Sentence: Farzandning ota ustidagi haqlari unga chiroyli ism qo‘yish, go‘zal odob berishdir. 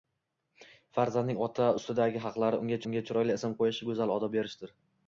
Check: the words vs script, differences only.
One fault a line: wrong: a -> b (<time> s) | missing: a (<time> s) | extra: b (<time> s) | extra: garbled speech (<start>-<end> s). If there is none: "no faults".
extra: unga (2.9 s)